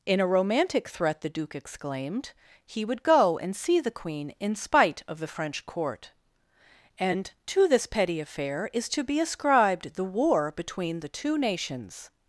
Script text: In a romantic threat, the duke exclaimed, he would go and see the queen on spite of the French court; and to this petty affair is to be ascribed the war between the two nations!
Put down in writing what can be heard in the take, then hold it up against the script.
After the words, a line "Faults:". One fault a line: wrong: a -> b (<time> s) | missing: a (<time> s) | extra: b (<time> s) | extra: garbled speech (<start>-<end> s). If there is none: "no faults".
In a romantic threat, the duke exclaimed, he would go and see the queen in spite of the French court; and to this petty affair is to be ascribed the war between the two nations!
Faults:
wrong: on -> in (4.4 s)